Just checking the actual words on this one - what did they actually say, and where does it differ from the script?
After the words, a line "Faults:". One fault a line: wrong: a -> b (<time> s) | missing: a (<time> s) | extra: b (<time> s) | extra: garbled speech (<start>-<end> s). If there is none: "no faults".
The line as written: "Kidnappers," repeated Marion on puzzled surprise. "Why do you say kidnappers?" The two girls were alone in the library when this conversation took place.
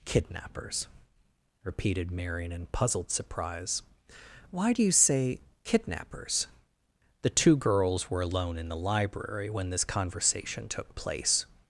"Kidnappers," repeated Marion in puzzled surprise. "Why do you say kidnappers?" The two girls were alone in the library when this conversation took place.
Faults:
wrong: on -> in (2.5 s)